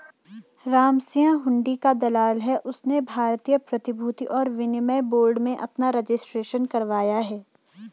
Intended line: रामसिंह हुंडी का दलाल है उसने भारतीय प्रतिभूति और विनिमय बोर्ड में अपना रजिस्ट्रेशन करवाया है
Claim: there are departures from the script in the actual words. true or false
false